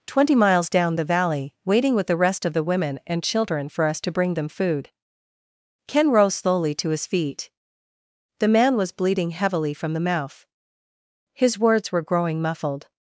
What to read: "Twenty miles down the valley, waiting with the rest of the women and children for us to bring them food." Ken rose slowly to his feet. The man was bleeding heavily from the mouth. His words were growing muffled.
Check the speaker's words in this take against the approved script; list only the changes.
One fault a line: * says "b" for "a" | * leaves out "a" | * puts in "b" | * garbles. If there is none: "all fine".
all fine